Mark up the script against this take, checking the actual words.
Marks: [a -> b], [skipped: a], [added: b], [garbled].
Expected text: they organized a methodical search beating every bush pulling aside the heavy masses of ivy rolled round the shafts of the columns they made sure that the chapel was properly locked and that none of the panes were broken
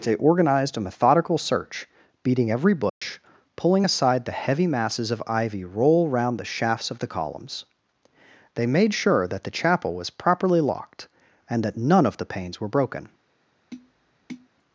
they organized a methodical search beating every bush pulling aside the heavy masses of ivy [rolled -> roll] round the shafts of the columns they made sure that the chapel was properly locked and that none of the panes were broken